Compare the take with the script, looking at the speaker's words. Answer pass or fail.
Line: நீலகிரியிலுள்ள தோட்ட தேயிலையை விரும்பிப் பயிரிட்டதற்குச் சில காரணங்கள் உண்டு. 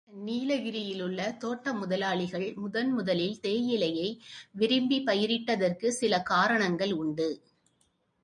fail